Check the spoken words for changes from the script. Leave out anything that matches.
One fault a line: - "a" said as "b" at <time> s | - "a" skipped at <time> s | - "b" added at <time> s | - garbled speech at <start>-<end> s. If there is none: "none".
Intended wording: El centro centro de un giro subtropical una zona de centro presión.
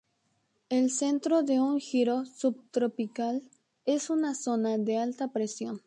- "centro" skipped at 1.4 s
- "es" added at 3.9 s
- "centro" said as "alta" at 5.0 s